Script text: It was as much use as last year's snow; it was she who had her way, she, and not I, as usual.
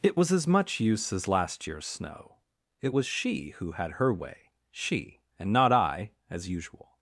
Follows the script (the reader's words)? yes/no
yes